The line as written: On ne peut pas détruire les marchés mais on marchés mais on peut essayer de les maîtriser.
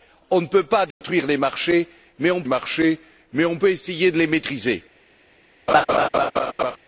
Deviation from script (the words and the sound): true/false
true